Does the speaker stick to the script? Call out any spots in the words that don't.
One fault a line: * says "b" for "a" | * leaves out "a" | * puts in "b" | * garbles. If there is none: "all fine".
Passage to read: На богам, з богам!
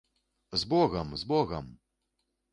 * says "З" for "На"